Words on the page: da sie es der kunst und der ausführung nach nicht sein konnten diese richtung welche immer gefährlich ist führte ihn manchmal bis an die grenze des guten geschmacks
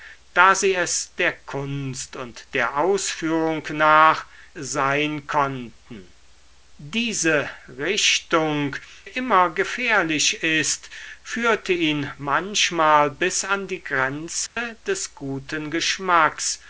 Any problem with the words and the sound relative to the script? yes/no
yes